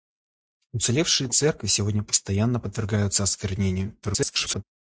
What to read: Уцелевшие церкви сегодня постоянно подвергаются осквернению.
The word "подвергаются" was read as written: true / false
true